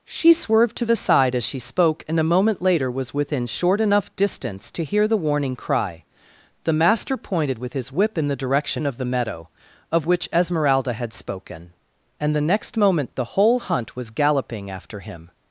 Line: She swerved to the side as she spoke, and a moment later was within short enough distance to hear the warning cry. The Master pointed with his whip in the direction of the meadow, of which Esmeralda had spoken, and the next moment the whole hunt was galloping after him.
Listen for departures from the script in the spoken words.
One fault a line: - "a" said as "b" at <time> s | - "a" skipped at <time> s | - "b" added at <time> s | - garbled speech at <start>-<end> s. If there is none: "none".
none